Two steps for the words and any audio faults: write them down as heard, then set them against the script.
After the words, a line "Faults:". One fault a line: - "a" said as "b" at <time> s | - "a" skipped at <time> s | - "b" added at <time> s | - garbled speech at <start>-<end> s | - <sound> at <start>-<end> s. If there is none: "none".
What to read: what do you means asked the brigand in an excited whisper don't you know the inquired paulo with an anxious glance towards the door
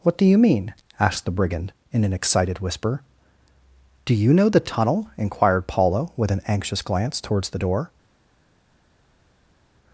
what do you mean asked the brigand in an excited whisper do you know the tunnel inquired paulo with an anxious glance towards the door
Faults:
- "means" said as "mean" at 0.4 s
- "don't" said as "do" at 4.0 s
- "tunnel" added at 4.6 s